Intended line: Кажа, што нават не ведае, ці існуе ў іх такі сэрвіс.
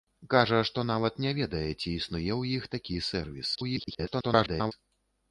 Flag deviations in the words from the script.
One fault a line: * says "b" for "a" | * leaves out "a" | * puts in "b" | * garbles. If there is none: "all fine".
* garbles